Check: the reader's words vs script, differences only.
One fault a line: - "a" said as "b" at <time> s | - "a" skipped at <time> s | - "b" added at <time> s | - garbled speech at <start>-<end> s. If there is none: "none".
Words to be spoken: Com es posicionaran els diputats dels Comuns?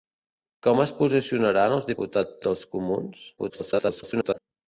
- garbled speech at 3.4-4.4 s